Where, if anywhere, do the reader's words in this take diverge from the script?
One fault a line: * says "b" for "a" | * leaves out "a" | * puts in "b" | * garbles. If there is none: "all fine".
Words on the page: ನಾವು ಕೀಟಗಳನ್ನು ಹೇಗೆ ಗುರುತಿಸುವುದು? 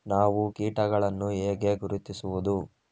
all fine